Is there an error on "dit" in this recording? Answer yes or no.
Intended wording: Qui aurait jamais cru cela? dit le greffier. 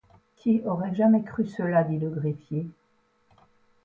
no